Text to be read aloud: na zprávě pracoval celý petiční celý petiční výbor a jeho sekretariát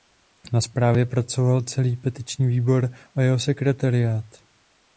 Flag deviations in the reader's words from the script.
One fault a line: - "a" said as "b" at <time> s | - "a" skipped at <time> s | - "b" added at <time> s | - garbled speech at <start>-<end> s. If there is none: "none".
- "celý petiční" skipped at 2.5 s